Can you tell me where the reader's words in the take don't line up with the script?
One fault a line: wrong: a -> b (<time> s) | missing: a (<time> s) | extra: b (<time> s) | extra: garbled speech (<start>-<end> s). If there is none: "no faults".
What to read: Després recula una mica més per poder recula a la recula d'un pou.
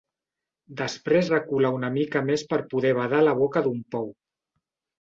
wrong: recula -> badar (3.0 s)
wrong: recula -> boca (3.4 s)